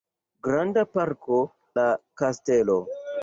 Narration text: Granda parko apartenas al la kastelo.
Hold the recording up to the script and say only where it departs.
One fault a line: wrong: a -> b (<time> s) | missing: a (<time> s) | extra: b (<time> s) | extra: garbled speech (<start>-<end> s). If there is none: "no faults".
missing: apartenas al (1.4 s)